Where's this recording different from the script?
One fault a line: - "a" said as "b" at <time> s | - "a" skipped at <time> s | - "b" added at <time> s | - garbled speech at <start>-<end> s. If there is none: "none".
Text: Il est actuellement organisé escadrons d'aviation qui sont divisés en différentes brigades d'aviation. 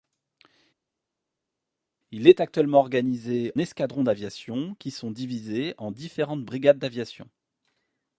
none